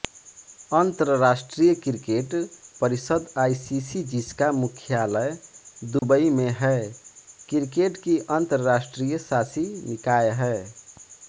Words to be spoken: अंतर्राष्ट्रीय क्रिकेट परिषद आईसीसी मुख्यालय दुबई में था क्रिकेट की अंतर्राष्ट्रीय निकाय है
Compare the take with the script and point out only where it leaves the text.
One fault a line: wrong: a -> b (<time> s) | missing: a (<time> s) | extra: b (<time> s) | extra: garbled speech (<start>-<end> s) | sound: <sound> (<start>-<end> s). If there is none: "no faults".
extra: जिसका (4.1 s)
sound: dropout (6.0-6.0 s)
wrong: था -> है (6.6 s)
extra: शासी (9.2 s)